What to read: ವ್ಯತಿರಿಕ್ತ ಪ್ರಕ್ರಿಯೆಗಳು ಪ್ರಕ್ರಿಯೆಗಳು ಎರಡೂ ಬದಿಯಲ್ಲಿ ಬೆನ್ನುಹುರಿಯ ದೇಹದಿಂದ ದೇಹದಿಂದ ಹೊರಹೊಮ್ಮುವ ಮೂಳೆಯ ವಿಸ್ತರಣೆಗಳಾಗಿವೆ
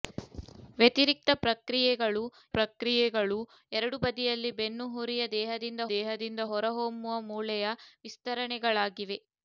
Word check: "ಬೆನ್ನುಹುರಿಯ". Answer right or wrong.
right